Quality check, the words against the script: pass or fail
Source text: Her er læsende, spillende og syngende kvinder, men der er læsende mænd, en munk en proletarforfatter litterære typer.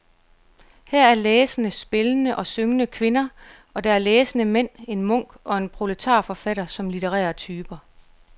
fail